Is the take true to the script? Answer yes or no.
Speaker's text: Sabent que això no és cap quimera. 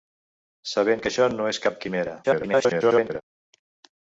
no